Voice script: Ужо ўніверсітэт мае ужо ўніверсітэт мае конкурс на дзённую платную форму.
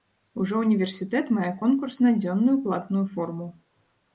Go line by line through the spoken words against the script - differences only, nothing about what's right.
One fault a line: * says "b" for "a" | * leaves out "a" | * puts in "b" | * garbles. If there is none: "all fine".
* leaves out "ужо ўніверсітэт мае"